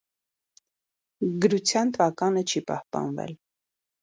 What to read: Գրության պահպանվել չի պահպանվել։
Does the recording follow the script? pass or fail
fail